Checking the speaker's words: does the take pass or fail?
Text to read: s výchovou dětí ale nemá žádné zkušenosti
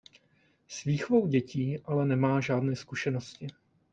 pass